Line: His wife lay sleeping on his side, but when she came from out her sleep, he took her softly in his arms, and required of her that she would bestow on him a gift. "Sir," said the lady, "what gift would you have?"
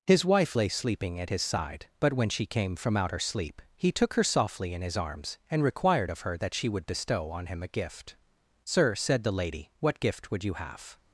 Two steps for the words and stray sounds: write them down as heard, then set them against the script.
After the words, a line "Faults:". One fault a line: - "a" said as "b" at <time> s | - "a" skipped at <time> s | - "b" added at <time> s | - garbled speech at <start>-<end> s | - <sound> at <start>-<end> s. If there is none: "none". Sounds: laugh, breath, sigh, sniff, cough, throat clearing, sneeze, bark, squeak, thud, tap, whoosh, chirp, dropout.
His wife lay sleeping at his side, but when she came from out her sleep, he took her softly in his arms, and required of her that she would bestow on him a gift. "Sir," said the lady, "what gift would you have?"
Faults:
- "on" said as "at" at 1.2 s